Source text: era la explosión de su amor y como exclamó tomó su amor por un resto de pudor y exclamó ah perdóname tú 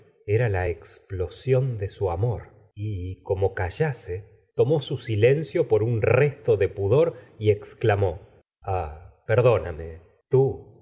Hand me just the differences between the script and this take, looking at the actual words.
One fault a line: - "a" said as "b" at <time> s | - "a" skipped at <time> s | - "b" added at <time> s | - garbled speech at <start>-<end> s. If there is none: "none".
- "exclamó" said as "callase" at 3.5 s
- "amor" said as "silencio" at 5.0 s